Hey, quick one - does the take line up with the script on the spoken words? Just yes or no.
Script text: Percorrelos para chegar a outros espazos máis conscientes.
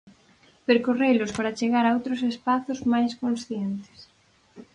yes